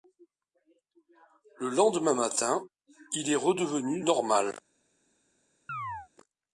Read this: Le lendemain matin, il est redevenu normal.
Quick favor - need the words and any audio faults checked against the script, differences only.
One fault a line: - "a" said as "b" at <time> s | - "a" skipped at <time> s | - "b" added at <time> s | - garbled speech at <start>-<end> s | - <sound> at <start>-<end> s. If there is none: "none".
- chirp at 5.7-6.1 s